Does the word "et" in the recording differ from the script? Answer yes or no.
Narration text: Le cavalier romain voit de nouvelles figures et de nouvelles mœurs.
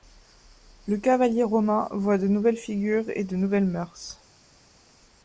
no